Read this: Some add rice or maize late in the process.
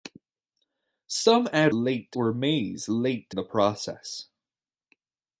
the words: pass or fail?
fail